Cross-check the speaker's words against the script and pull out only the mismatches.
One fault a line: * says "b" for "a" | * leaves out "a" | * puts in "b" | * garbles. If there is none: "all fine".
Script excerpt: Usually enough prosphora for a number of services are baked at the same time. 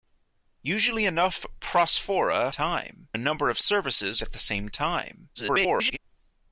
* says "time" for "for"
* leaves out "are baked"
* garbles